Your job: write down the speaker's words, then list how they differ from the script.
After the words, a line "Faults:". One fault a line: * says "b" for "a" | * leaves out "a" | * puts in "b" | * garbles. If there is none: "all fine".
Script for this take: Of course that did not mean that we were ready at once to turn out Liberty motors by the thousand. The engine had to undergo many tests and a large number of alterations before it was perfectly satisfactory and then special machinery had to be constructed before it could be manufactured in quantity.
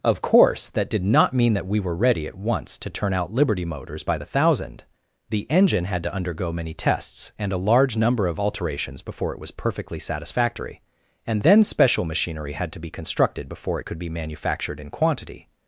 Of course that did not mean that we were ready at once to turn out Liberty motors by the thousand. The engine had to undergo many tests and a large number of alterations before it was perfectly satisfactory and then special machinery had to be constructed before it could be manufactured in quantity.
Faults:
all fine